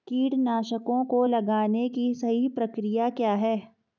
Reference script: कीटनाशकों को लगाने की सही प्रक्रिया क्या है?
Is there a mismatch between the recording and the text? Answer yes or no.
no